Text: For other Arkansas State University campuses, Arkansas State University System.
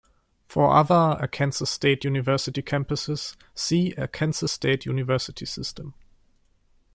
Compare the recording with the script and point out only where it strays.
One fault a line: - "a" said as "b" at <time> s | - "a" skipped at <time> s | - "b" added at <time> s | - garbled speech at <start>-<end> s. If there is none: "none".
- "see" added at 3.6 s